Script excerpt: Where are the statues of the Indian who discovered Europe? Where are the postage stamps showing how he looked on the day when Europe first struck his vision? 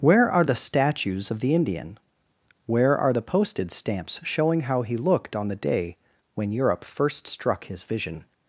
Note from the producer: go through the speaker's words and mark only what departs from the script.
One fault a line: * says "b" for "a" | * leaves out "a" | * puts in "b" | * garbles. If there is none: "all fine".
* leaves out "who discovered Europe"